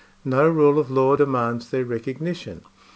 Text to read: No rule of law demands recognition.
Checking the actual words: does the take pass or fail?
fail